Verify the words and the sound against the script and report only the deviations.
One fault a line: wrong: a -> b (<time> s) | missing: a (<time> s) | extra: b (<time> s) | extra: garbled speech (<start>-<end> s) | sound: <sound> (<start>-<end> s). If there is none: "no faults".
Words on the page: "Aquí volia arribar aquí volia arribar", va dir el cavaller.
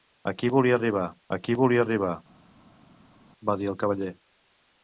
no faults